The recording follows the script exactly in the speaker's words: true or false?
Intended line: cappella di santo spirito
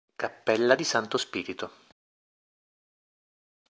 true